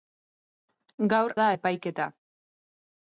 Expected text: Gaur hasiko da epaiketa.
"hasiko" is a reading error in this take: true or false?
true